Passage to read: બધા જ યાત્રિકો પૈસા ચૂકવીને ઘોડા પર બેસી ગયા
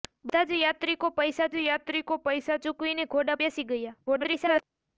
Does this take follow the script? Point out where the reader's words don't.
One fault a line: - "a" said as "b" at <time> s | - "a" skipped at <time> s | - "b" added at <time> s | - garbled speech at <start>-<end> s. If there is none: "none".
- "જ યાત્રિકો પૈસા" added at 1.5 s
- "પર" skipped at 3.4 s
- garbled speech at 4.1-4.6 s